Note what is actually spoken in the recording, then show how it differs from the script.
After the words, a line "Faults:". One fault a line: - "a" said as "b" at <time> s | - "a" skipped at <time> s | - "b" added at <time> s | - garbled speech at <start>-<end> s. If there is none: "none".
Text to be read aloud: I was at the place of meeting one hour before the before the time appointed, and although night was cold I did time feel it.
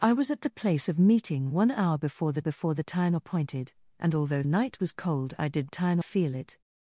I was at the place of meeting one hour before the before the time appointed, and although night was cold I did time feel it.
Faults:
none